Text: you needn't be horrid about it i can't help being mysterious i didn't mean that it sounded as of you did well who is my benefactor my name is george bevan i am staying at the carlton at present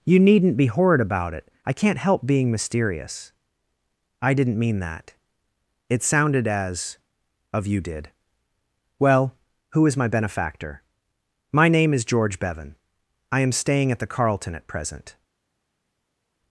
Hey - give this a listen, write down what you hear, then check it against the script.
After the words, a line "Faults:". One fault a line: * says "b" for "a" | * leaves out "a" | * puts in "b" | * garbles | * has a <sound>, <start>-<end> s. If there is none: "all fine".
you needn't be horrid about it i can't help being mysterious i didn't mean that it sounded as of you did well who is my benefactor my name is george bevan i am staying at the carlton at present
Faults:
all fine